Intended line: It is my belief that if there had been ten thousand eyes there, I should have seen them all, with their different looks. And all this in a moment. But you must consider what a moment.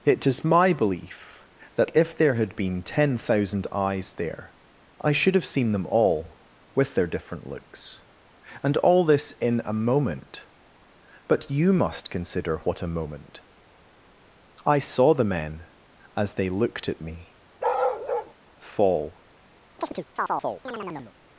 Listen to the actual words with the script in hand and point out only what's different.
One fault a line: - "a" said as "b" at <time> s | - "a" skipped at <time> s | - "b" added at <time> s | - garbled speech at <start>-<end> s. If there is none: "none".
- "I saw the men as they looked at me fall" added at 14.7 s